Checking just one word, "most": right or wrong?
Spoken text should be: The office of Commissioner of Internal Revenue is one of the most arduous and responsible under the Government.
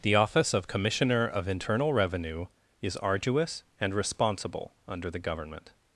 wrong